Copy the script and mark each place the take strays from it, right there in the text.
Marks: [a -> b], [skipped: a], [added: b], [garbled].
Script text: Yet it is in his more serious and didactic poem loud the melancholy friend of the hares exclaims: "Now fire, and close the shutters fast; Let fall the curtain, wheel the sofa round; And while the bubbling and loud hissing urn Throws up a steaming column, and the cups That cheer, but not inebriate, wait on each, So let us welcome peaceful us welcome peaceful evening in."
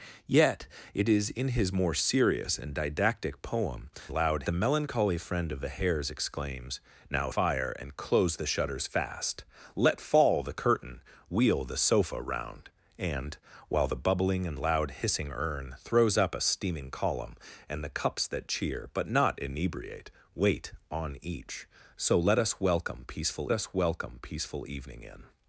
Yet it is in his more serious and didactic poem loud the melancholy friend of the hares exclaims: "Now fire, and close the shutters fast; Let fall the curtain, wheel the sofa round; And while the bubbling and loud hissing urn Throws up a steaming column, and the cups That cheer, but not inebriate, wait on each, So let us welcome peaceful us welcome peaceful evening in."